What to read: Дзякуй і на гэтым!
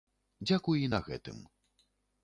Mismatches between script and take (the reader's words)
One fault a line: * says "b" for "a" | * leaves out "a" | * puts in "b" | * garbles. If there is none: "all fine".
all fine